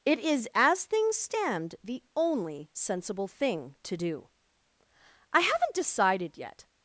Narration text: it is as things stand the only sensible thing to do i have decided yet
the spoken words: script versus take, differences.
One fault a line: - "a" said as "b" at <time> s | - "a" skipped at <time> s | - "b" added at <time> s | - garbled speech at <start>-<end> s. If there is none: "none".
- "have" said as "haven't" at 5.4 s